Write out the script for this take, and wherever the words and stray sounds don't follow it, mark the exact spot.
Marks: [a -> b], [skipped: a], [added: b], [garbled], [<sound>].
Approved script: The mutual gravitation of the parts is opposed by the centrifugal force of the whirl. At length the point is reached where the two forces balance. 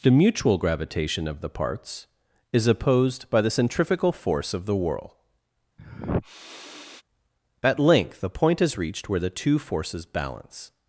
The mutual gravitation of the parts is opposed by the centrifugal force of the whirl. [sniff] At length the point is reached where the two forces balance.